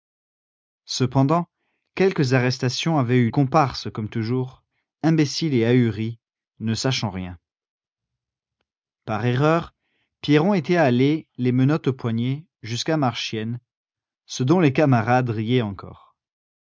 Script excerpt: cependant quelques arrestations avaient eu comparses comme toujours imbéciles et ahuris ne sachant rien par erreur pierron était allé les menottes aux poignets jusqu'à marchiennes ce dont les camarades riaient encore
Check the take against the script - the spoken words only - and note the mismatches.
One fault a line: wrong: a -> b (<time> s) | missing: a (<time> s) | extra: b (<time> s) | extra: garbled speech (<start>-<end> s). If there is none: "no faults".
no faults